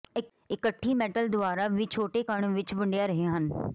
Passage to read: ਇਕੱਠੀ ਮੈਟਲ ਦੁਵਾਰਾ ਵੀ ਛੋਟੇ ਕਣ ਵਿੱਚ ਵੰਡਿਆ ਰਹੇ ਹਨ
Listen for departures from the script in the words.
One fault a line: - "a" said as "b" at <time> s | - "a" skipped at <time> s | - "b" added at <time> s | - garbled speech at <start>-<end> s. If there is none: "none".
none